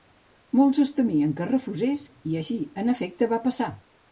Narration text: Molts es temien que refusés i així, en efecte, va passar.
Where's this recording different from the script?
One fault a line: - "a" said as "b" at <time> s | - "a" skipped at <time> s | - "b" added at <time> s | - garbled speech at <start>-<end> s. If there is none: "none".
none